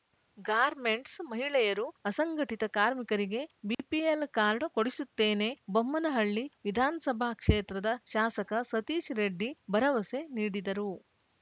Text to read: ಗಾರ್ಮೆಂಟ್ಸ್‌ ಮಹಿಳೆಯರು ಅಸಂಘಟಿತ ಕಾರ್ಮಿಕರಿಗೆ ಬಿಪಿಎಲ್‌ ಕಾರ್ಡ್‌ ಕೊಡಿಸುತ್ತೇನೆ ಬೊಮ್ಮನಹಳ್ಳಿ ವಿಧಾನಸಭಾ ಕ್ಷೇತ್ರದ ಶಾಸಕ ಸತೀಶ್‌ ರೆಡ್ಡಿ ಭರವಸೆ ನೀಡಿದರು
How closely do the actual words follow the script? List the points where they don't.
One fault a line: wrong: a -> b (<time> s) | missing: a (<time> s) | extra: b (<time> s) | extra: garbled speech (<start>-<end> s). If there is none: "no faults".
no faults